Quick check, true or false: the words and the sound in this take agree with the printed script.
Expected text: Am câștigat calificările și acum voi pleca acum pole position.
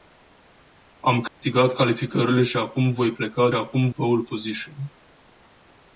false